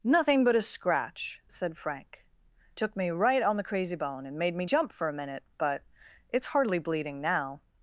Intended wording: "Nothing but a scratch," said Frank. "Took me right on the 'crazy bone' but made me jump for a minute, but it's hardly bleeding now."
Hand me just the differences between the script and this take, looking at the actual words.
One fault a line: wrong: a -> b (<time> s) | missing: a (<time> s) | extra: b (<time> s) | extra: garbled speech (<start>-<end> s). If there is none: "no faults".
wrong: but -> and (4.2 s)